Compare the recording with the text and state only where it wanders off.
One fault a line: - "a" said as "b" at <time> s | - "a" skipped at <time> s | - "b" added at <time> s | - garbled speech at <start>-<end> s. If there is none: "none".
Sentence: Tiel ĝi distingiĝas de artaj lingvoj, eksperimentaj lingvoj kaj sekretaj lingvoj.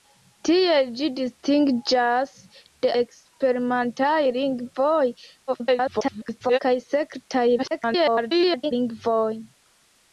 - "artaj lingvoj" skipped at 2.9 s
- garbled speech at 5.5-6.6 s
- garbled speech at 7.6-8.7 s